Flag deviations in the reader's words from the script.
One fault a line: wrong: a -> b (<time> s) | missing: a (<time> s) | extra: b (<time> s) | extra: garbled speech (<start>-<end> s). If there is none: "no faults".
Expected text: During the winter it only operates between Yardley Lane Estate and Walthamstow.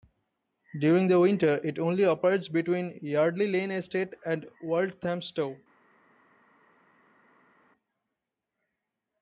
no faults